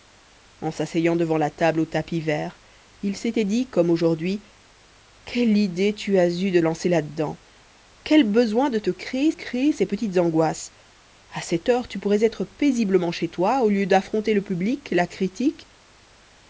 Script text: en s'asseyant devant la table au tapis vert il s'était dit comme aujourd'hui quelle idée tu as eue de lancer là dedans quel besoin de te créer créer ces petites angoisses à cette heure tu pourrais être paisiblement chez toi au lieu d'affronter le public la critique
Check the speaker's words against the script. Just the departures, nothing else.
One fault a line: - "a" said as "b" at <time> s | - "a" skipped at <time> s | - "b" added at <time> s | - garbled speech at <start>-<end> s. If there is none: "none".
none